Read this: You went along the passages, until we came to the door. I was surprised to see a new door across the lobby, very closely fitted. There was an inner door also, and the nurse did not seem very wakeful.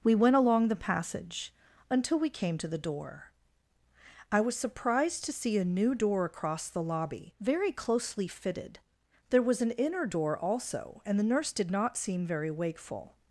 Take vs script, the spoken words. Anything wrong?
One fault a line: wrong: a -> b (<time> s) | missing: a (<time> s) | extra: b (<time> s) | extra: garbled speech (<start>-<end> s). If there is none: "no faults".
wrong: You -> We (0.0 s)
wrong: passages -> passage (0.8 s)